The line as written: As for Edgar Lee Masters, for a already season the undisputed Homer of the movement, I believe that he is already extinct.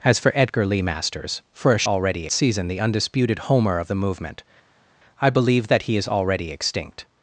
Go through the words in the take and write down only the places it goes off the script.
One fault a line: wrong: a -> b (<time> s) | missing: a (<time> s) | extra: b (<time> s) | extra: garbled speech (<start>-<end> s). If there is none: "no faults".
no faults